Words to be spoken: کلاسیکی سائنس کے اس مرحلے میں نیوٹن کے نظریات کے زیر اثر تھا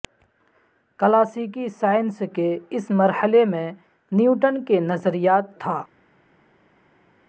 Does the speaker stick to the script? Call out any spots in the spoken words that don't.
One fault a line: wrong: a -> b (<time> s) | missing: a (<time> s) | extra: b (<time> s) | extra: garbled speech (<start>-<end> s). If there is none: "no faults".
missing: کے زیر اثر (5.6 s)